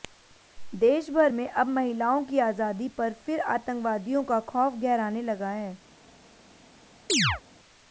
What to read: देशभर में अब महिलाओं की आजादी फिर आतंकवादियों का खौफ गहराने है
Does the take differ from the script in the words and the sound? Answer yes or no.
yes